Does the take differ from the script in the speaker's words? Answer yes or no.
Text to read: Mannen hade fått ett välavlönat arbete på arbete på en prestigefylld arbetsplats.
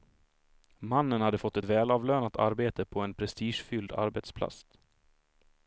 yes